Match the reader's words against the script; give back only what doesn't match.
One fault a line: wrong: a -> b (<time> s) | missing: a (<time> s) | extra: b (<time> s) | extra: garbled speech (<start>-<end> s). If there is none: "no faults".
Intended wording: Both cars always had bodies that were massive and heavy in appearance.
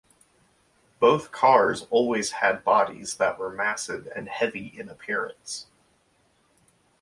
no faults